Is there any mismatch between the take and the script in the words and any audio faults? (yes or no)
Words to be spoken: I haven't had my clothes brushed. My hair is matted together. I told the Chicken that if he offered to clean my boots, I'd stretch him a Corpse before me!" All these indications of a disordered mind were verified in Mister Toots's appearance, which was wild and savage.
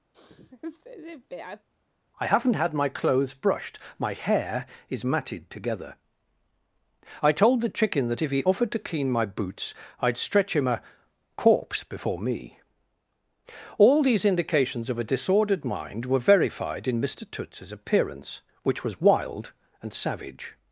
yes